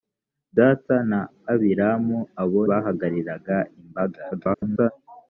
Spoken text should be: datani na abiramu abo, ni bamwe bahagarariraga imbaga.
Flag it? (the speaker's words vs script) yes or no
yes